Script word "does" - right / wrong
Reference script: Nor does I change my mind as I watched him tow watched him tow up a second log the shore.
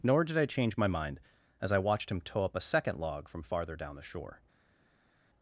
wrong